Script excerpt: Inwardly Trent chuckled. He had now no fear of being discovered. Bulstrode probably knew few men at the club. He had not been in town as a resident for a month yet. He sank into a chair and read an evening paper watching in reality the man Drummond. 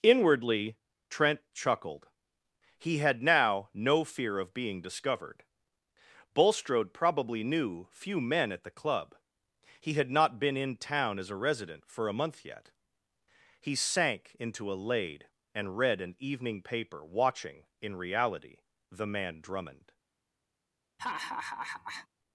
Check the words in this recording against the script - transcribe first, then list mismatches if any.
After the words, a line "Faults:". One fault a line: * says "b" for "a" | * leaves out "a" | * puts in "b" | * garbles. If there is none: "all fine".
Inwardly Trent chuckled. He had now no fear of being discovered. Bulstrode probably knew few men at the club. He had not been in town as a resident for a month yet. He sank into a laid and read an evening paper watching in reality the man Drummond.
Faults:
* says "laid" for "chair"